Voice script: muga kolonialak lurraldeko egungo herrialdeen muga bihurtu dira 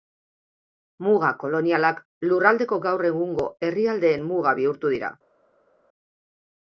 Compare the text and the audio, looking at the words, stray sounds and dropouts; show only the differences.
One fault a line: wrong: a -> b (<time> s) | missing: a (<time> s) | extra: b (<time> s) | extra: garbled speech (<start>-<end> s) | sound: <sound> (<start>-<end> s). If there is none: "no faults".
extra: gaur (2.9 s)